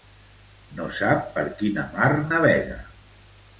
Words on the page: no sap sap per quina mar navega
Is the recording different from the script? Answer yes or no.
yes